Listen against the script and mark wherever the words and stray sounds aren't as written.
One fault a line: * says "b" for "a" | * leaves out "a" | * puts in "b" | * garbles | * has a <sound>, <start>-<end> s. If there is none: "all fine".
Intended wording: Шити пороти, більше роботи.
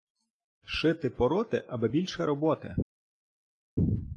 * puts in "аби"